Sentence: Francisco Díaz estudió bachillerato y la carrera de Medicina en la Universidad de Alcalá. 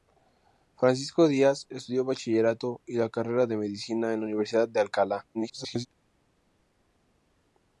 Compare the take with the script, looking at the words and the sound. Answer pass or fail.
fail